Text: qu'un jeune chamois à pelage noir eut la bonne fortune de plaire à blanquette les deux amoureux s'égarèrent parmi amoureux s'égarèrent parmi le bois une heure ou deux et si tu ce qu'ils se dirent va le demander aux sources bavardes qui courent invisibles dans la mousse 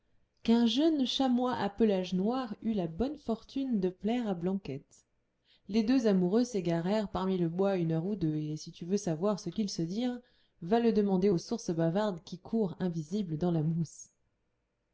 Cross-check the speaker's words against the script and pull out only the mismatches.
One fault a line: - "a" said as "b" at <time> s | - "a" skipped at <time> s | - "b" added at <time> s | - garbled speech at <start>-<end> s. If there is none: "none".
- "amoureux s'égarèrent parmi" skipped at 7.4 s
- "veux savoir" added at 8.8 s